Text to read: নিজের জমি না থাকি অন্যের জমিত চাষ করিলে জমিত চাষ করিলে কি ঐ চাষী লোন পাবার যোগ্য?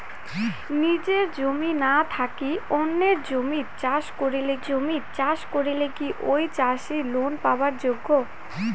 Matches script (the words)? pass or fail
pass